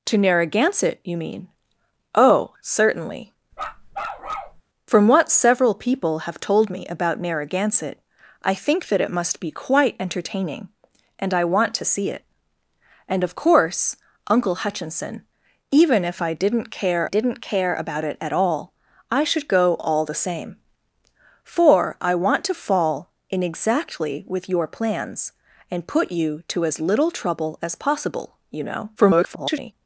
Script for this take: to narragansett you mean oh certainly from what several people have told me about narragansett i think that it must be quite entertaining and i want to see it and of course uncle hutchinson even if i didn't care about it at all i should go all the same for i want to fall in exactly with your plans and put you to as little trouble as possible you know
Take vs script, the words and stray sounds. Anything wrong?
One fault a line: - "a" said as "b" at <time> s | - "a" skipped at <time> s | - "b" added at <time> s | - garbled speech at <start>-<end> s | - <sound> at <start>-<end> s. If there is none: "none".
- bark at 3.5-4.6 s
- "didn't care" added at 17.1 s
- garbled speech at 29.0-29.7 s